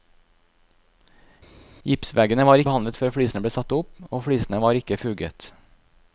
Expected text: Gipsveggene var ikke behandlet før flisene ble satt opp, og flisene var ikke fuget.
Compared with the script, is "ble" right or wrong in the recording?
right